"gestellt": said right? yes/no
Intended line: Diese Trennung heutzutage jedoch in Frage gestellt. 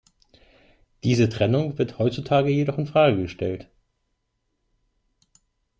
yes